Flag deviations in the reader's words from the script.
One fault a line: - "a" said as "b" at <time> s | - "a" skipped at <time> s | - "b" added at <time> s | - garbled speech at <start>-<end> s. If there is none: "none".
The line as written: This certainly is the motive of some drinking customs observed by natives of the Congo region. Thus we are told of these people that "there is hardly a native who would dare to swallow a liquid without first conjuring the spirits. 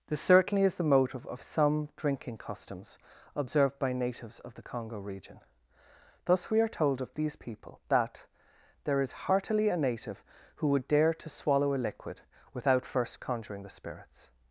- "hardly" said as "heartily" at 9.3 s